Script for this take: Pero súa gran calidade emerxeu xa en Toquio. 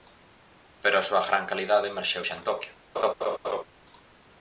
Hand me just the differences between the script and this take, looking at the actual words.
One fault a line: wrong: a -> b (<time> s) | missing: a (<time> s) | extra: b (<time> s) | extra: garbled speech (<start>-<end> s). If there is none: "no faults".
extra: a (1.0 s)